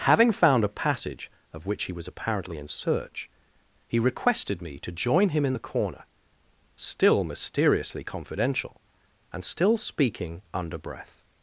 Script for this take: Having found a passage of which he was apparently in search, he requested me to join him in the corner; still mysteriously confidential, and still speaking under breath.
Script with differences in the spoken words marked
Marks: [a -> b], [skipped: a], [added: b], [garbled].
Having found a passage of which he was apparently in search, he requested me to join him in the corner; still mysteriously confidential, and still speaking under breath.